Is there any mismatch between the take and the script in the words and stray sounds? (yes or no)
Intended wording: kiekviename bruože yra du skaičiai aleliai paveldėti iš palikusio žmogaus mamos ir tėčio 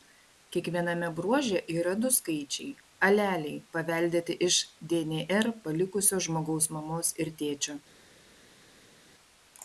yes